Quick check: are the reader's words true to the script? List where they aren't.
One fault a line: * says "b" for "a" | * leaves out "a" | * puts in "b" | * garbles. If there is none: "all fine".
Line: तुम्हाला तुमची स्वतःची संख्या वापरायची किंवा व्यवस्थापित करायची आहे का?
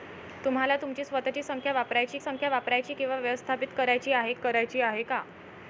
* puts in "संख्या वापरायची"
* puts in "करायची आहे"